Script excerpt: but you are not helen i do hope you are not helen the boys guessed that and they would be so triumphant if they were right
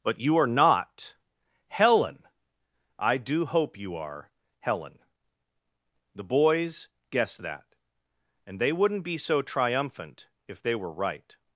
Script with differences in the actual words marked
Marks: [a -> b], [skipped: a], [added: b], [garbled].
but you are not helen i do hope you are [skipped: not] helen the boys guessed that and they [would -> wouldn't] be so triumphant if they were right